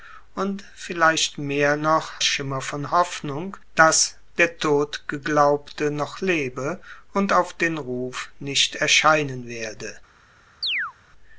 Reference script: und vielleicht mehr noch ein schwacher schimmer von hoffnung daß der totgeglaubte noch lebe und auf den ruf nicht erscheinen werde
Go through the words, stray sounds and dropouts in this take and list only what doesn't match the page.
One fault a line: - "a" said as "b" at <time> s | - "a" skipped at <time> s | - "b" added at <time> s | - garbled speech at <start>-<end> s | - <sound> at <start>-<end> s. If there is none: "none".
- "ein schwacher" skipped at 2.2 s
- chirp at 10.6-10.9 s